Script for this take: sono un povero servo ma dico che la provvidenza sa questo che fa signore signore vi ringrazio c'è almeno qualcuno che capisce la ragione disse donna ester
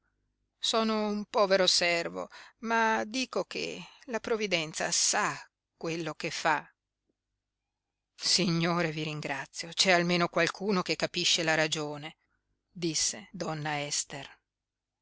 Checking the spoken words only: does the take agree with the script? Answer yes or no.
no